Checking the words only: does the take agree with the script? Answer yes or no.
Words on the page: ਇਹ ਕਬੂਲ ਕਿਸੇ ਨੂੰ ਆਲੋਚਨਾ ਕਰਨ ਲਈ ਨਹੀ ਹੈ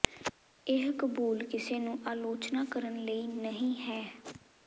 yes